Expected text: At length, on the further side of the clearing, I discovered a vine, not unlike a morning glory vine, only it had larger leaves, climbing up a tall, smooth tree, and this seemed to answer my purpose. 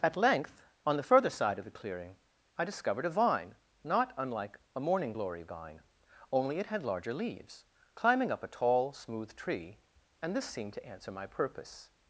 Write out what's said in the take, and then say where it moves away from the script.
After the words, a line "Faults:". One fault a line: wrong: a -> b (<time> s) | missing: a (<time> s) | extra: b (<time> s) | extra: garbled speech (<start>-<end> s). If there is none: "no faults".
At length, on the further side of the clearing, I discovered a vine, not unlike a morning glory vine, only it had larger leaves, climbing up a tall, smooth tree, and this seemed to answer my purpose.
Faults:
no faults